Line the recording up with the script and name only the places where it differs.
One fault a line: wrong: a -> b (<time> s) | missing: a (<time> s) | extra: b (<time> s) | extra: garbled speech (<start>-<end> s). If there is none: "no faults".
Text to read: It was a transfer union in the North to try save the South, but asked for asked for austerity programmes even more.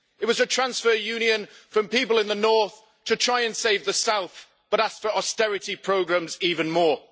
extra: from people (1.7 s)
extra: and (3.4 s)
missing: asked for (5.1 s)